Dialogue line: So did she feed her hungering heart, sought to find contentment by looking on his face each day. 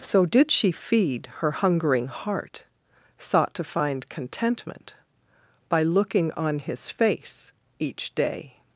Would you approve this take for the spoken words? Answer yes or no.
yes